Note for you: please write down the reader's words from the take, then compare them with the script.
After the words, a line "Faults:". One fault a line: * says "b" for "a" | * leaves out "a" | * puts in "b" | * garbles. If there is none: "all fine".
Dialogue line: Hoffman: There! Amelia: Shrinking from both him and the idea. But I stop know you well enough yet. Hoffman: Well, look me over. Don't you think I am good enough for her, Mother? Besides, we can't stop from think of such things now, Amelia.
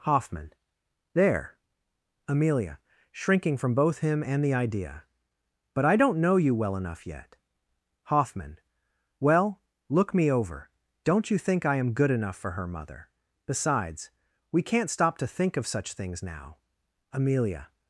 Hoffman: There! Amelia: Shrinking from both him and the idea. But I don't know you well enough yet. Hoffman: Well, look me over. Don't you think I am good enough for her, Mother? Besides, we can't stop to think of such things now, Amelia.
Faults:
* says "don't" for "stop"
* says "to" for "from"